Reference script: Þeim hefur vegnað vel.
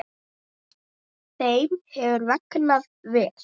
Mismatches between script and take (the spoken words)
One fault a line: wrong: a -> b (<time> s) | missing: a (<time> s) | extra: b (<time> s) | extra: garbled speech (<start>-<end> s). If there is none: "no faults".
no faults